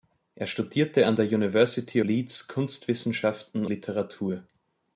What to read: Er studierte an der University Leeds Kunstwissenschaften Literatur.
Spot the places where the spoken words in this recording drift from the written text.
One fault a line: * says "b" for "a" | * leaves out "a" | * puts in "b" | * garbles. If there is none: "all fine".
all fine